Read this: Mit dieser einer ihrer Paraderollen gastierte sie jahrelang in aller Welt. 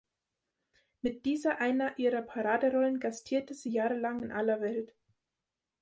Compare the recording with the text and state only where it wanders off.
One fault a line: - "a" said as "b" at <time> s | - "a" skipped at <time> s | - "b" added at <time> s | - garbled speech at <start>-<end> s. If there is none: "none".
none